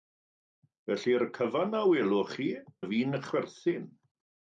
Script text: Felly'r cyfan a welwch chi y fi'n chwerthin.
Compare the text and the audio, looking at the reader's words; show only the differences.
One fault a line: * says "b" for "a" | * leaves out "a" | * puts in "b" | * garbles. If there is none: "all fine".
all fine